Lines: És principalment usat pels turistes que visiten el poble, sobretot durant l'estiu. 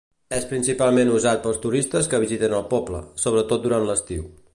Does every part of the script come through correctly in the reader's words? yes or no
yes